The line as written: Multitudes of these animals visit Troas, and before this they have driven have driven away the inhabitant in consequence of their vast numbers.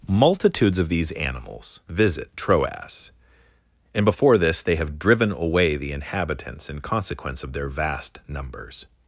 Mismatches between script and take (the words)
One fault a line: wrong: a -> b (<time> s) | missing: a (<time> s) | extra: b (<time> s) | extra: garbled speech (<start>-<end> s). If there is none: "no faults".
missing: have driven (5.3 s)
wrong: inhabitant -> inhabitants (5.9 s)